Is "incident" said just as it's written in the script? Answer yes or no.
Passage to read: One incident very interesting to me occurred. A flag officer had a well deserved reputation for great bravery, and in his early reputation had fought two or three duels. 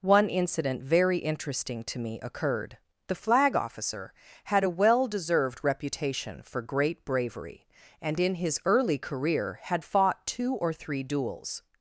yes